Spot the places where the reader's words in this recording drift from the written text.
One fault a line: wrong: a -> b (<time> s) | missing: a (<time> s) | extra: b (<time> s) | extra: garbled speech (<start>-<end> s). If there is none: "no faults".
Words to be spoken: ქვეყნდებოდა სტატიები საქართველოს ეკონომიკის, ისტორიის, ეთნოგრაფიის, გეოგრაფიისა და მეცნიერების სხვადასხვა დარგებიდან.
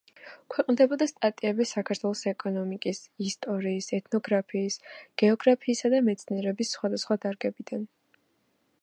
no faults